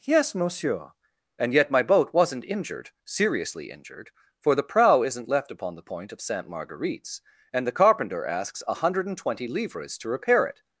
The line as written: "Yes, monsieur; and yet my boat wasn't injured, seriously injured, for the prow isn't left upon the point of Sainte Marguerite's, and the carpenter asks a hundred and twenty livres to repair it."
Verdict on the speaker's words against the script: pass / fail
pass